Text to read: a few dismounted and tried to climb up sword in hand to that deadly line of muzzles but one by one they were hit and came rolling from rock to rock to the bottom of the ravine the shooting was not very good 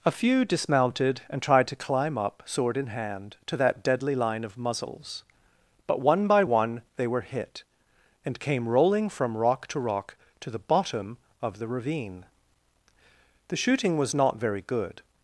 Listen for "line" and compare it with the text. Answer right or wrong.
right